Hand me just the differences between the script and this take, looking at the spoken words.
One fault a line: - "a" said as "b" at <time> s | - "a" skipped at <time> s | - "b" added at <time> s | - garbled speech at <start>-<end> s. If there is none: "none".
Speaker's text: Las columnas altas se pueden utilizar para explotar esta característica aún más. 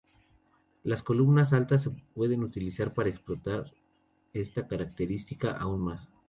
none